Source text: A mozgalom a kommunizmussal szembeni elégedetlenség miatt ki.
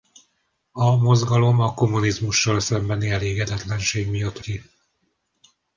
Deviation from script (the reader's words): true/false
false